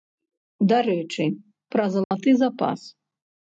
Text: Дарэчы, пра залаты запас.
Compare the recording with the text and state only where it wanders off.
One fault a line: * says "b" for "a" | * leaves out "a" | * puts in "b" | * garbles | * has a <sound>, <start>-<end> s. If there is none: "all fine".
* has a dropout, 2.0-2.1 s